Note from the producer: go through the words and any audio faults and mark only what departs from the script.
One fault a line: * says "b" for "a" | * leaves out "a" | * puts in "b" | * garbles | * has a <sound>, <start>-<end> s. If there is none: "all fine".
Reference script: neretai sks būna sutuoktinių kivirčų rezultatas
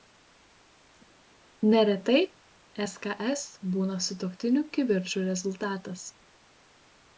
all fine